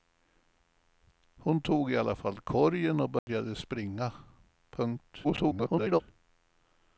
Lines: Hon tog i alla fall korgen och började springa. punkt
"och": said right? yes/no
yes